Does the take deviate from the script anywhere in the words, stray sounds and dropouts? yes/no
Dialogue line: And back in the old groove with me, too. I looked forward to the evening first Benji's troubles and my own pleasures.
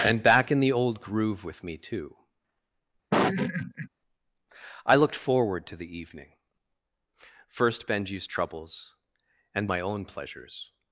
yes